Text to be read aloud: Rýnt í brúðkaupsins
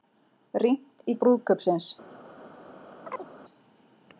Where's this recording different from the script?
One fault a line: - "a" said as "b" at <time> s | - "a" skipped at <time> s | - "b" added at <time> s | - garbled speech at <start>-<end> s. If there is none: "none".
none